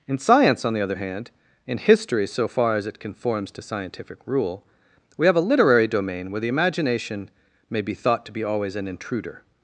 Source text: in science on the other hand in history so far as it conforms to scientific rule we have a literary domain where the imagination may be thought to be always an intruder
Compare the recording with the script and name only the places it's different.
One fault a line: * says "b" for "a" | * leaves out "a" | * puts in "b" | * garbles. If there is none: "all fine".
all fine